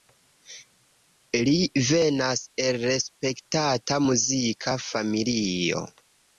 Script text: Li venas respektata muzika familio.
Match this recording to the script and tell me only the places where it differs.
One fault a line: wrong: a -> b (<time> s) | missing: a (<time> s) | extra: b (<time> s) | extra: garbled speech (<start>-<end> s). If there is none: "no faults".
extra: el (2.6 s)